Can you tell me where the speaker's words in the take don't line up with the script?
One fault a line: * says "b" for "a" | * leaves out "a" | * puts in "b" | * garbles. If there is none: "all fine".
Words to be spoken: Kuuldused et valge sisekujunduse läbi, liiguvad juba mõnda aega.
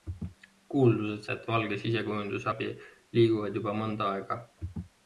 all fine